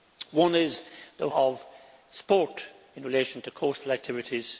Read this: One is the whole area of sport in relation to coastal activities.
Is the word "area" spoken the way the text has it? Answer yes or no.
no